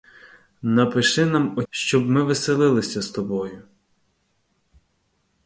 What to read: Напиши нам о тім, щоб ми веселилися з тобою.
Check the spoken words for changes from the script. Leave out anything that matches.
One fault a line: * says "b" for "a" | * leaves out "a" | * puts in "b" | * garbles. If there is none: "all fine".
* leaves out "тім"